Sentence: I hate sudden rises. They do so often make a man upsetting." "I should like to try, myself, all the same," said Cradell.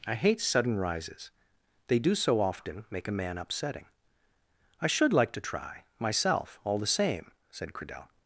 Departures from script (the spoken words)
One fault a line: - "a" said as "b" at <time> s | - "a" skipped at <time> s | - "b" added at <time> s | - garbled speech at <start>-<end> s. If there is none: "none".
none